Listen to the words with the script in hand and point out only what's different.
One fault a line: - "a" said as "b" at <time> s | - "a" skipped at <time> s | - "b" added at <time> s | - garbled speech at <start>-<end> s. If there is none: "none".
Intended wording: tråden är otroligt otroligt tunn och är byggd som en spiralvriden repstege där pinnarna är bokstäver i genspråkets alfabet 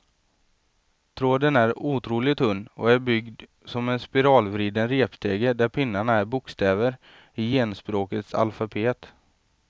- "otroligt" skipped at 2.4 s